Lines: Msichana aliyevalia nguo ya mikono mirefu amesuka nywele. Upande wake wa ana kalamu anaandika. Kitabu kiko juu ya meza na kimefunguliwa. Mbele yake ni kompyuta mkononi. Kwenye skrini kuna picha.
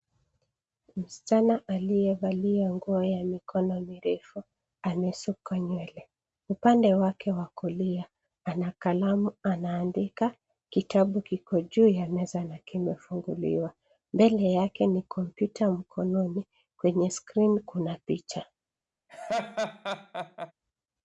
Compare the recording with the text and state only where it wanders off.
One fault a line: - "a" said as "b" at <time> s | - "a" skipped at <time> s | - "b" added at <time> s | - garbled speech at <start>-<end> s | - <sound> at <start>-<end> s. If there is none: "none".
- "kulia" added at 7.5 s
- laugh at 19.1-20.5 s